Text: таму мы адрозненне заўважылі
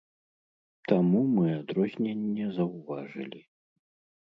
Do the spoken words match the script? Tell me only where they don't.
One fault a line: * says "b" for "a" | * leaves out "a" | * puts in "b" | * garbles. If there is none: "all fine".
all fine